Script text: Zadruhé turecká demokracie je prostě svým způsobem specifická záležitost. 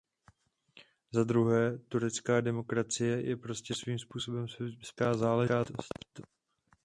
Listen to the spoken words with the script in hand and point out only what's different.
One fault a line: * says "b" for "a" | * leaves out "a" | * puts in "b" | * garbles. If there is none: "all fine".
all fine